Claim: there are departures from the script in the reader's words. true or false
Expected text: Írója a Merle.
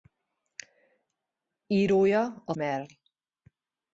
false